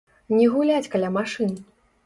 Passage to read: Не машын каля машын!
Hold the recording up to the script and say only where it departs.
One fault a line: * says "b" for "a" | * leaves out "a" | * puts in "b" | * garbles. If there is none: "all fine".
* says "гуляць" for "машын"